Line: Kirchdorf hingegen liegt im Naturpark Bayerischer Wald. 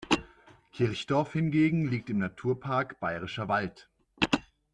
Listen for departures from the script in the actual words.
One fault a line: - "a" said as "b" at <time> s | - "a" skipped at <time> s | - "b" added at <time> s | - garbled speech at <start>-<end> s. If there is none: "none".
none